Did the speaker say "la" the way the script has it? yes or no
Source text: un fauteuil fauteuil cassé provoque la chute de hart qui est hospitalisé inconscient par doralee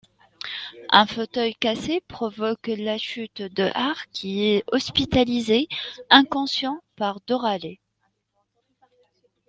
yes